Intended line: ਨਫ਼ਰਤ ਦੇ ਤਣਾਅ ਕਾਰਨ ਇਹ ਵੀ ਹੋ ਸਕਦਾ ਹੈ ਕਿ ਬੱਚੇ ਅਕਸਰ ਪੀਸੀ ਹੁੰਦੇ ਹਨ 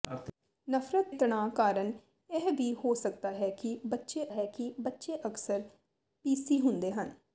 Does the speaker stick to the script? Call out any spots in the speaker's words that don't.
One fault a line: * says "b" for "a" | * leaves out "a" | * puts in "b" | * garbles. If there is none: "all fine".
* leaves out "ਦੇ"
* puts in "ਹੈ ਕਿ ਬੱਚੇ"